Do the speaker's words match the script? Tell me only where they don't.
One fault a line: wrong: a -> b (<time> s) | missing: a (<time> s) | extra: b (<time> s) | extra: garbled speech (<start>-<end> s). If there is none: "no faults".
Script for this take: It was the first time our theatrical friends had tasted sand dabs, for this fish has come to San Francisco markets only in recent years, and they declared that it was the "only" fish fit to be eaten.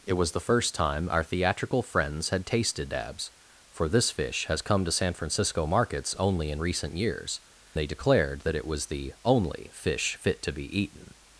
missing: sand (2.9 s)
missing: and (7.4 s)